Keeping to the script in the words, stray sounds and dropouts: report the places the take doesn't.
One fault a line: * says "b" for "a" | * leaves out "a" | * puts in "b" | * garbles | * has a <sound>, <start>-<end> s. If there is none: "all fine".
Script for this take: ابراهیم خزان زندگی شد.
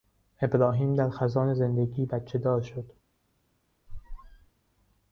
* puts in "در"
* puts in "بچهدار"
* has a squeak, 3.9-4.5 s